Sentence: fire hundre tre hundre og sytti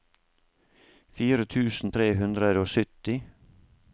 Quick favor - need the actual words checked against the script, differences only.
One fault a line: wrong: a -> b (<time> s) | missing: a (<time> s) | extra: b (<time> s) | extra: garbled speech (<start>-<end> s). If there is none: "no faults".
wrong: hundre -> tusen (1.5 s)